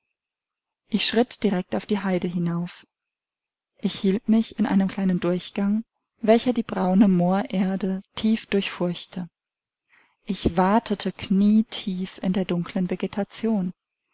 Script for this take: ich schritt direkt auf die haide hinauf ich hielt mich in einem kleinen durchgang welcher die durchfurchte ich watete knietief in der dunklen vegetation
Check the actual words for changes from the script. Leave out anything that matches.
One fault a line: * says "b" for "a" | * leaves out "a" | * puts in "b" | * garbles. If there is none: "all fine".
* puts in "braune moorerde tief"